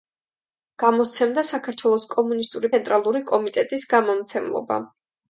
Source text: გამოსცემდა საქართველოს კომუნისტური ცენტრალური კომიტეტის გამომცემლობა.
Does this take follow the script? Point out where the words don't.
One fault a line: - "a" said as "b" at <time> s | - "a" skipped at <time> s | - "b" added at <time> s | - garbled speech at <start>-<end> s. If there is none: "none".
none